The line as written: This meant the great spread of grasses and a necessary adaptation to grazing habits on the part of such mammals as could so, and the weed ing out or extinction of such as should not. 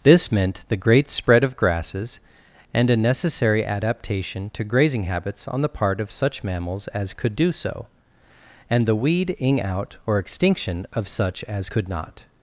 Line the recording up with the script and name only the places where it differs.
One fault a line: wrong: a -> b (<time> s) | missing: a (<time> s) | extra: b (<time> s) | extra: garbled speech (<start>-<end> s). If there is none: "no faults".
extra: do (7.3 s)
wrong: should -> could (11.7 s)